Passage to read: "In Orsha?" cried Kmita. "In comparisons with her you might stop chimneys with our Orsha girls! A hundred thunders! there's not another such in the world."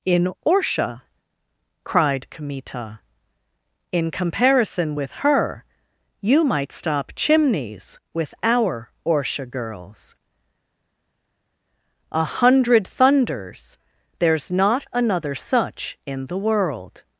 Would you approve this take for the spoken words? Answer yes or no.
no